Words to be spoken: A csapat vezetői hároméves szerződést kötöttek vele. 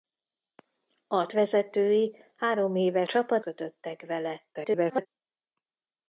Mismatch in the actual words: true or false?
true